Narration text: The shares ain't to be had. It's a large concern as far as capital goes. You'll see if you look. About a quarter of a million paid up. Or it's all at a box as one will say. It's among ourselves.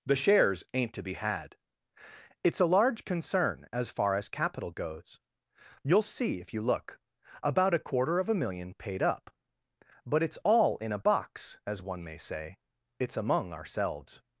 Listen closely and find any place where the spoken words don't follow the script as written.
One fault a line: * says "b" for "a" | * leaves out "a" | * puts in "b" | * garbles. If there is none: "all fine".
* says "But" for "Or"
* says "in" for "at"
* says "may" for "will"